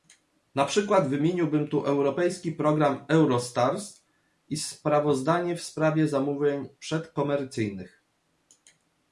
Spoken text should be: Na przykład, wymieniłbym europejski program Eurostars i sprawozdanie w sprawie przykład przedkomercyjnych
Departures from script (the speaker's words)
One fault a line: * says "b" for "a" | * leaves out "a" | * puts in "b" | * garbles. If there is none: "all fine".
* puts in "tu"
* says "zamówień" for "przykład"